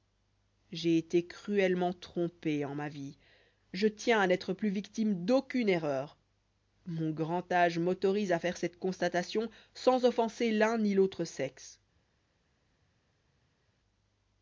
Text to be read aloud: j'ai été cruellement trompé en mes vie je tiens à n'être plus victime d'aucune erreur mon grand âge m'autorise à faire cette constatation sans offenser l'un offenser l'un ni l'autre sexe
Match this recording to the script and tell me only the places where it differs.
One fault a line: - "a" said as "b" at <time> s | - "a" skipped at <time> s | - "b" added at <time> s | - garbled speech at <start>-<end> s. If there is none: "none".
- "mes" said as "ma" at 2.7 s
- "offenser l'un" skipped at 10.8 s